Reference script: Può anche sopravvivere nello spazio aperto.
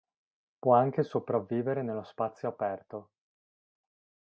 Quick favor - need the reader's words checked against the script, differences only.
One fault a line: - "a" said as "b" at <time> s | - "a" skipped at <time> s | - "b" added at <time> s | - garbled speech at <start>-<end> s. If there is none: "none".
none